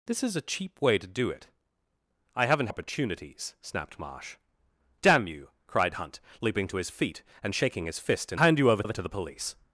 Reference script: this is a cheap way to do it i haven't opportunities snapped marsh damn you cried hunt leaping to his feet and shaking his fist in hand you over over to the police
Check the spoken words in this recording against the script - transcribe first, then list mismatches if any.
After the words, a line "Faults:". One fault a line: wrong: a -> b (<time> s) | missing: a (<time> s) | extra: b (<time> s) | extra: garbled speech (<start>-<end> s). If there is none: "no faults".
this is a cheap way to do it i haven't opportunities snapped marsh damn you cried hunt leaping to his feet and shaking his fist in hand you over over to the police
Faults:
no faults